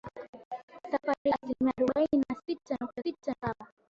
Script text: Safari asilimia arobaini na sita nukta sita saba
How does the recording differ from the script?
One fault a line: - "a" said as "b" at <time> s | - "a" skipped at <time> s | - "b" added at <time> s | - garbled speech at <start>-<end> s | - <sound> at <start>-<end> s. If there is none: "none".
- dropout at 1.2-1.3 s